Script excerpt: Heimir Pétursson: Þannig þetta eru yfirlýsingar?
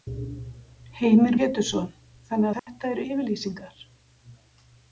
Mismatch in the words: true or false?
false